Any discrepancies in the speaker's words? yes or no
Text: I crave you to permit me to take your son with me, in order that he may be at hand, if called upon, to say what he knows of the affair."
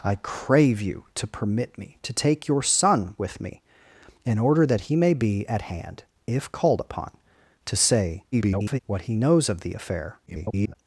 yes